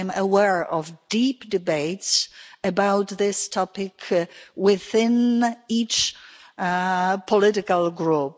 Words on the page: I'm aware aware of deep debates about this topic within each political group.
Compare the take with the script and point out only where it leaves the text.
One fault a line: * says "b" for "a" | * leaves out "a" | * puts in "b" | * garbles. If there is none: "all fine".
* leaves out "aware"